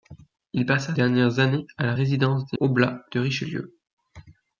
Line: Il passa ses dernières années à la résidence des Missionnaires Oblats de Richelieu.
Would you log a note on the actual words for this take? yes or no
yes